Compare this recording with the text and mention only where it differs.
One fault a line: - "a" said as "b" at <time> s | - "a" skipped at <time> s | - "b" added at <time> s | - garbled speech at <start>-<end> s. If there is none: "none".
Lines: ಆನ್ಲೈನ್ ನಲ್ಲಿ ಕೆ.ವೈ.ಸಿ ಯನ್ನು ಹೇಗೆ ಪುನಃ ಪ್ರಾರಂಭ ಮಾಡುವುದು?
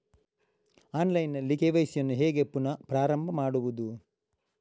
none